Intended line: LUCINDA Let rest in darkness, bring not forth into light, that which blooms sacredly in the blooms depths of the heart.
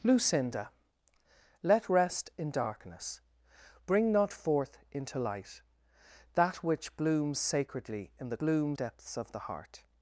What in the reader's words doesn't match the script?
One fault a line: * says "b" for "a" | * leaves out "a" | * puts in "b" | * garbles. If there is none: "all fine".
all fine